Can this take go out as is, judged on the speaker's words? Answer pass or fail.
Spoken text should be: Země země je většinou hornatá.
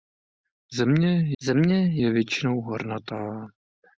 pass